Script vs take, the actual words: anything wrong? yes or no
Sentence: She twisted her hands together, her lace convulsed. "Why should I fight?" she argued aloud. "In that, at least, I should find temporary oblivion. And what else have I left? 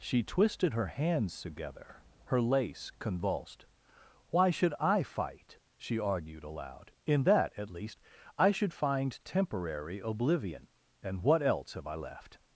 no